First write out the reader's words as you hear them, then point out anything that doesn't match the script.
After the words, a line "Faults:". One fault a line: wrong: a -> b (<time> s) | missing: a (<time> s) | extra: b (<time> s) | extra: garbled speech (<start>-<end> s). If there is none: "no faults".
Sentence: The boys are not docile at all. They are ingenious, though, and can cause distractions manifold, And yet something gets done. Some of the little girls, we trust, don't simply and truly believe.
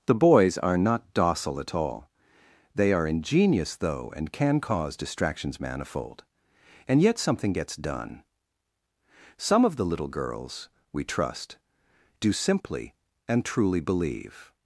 The boys are not docile at all. They are ingenious, though, and can cause distractions manifold, And yet something gets done. Some of the little girls, we trust, do simply and truly believe.
Faults:
wrong: don't -> do (12.2 s)